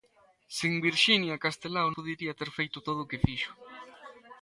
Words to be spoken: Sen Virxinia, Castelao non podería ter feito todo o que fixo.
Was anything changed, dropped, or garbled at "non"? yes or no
yes